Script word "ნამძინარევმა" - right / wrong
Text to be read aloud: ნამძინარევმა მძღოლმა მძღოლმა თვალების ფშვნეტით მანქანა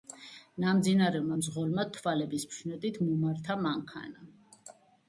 right